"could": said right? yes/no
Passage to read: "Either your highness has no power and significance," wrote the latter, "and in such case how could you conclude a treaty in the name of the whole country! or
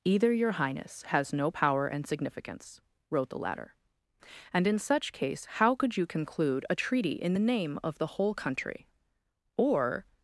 yes